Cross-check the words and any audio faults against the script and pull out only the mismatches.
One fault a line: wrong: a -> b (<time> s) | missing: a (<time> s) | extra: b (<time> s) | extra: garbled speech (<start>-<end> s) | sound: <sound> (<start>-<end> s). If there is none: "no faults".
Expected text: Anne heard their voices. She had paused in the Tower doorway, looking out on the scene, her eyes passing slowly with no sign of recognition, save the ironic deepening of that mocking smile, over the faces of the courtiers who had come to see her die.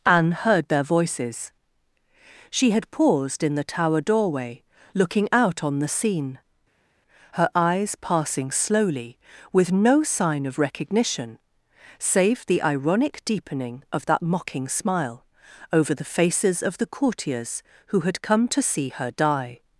no faults